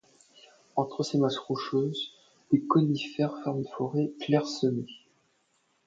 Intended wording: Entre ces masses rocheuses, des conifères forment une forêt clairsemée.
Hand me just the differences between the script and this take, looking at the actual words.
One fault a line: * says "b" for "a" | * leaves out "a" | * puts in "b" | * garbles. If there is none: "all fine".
all fine